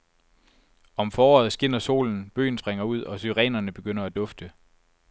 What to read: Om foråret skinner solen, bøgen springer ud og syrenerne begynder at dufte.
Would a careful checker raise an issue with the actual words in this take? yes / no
no